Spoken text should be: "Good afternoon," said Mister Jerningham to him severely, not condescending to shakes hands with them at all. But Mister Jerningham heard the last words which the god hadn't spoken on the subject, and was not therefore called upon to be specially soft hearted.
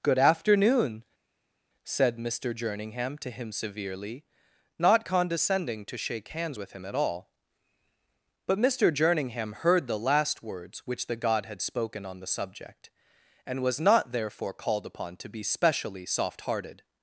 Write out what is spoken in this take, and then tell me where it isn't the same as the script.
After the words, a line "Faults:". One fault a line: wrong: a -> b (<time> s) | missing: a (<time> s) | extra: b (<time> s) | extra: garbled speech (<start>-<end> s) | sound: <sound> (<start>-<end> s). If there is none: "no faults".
"Good afternoon," said Mister Jerningham to him severely, not condescending to shake hands with him at all. But Mister Jerningham heard the last words which the god had spoken on the subject, and was not therefore called upon to be specially soft hearted.
Faults:
wrong: shakes -> shake (6.0 s)
wrong: them -> him (6.7 s)
wrong: hadn't -> had (11.5 s)